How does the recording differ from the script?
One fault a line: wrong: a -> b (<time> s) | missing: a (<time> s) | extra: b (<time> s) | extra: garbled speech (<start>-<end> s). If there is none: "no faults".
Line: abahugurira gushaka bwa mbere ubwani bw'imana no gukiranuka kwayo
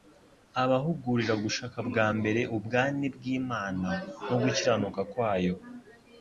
no faults